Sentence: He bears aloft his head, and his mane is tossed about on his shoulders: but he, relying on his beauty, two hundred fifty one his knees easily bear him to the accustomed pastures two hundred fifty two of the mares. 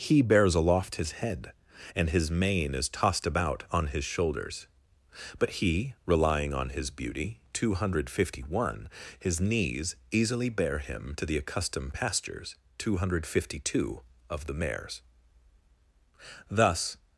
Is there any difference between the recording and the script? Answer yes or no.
yes